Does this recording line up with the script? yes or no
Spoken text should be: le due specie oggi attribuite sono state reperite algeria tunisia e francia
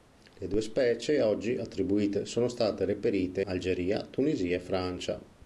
yes